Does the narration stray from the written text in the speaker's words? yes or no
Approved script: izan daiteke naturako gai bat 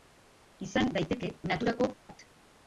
yes